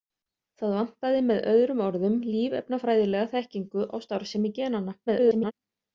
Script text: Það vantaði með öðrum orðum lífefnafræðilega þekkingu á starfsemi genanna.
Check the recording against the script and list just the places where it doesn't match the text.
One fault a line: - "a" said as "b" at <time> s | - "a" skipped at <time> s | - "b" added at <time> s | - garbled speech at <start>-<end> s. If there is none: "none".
- garbled speech at 5.1-5.5 s